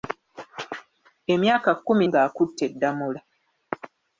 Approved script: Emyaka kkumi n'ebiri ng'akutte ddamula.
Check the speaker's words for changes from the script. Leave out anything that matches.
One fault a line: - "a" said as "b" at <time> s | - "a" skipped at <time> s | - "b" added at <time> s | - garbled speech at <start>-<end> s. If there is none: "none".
- "n'ebiri" skipped at 2.0 s